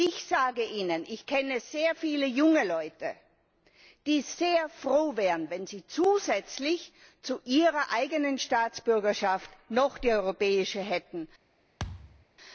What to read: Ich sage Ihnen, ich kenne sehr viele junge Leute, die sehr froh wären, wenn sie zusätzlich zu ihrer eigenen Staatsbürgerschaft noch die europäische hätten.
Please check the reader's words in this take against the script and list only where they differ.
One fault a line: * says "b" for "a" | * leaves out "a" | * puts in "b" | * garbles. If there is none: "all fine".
all fine